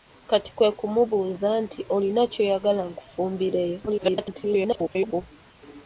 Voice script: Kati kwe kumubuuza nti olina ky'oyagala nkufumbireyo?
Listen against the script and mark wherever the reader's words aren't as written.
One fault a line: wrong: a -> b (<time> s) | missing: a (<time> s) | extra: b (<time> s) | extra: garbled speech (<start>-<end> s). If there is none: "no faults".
extra: garbled speech (3.9-5.2 s)